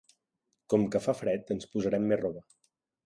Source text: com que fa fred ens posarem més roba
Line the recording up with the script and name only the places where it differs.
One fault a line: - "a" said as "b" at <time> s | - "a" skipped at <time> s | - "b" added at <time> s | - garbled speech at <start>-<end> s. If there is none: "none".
none